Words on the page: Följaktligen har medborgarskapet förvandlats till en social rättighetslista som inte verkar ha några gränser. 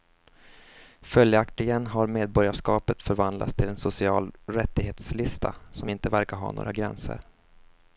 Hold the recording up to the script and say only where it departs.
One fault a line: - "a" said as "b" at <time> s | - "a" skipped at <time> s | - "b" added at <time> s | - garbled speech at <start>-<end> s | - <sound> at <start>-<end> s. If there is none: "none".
none